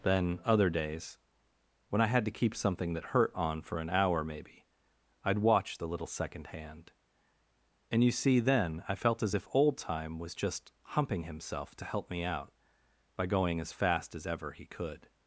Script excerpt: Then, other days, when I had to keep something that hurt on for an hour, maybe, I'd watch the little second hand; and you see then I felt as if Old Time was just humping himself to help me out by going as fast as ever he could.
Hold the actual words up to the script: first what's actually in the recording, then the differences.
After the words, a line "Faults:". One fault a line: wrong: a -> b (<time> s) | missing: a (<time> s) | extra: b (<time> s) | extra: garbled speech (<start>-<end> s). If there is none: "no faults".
Then, other days, when I had to keep something that hurt on for an hour, maybe, I'd watch the little second hand; and you see then I felt as if Old Time was just humping himself to help me out by going as fast as ever he could.
Faults:
no faults